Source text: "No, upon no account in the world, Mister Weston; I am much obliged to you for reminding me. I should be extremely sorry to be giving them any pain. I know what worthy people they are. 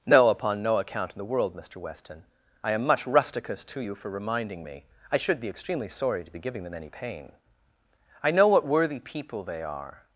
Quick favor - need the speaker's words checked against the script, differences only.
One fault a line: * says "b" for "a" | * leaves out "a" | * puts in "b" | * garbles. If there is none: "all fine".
* says "rusticus" for "obliged"